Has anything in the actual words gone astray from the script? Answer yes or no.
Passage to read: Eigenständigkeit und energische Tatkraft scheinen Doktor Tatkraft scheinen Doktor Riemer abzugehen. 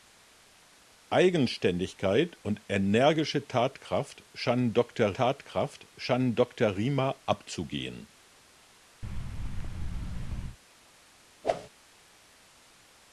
no